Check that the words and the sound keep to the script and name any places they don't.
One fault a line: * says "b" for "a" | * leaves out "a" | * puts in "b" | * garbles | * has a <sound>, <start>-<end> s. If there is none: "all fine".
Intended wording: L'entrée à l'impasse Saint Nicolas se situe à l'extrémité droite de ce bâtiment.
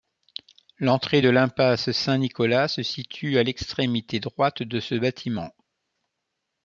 * says "de" for "à"